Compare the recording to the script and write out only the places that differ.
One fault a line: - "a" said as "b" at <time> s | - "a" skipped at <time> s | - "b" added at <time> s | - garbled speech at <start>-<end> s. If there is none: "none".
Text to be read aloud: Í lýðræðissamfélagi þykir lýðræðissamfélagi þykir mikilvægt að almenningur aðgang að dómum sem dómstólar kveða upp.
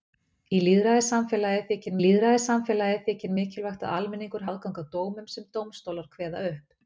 none